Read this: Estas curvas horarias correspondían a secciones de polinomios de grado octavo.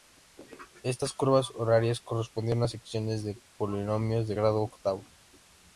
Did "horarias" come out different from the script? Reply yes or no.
no